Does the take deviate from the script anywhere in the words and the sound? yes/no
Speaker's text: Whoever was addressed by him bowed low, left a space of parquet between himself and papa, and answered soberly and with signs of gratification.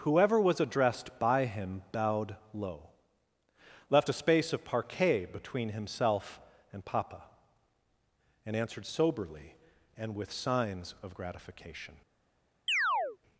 yes